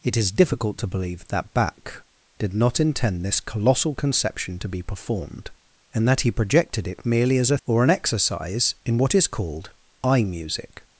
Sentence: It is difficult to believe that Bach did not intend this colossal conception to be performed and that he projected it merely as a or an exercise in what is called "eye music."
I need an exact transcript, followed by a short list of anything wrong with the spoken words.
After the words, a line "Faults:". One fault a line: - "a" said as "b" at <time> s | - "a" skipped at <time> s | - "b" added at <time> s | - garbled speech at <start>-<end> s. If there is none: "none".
It is difficult to believe that Bach did not intend this colossal conception to be performed and that he projected it merely as a or an exercise in what is called "eye music."
Faults:
none